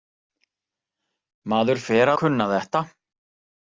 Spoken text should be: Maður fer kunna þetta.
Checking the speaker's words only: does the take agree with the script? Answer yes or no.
yes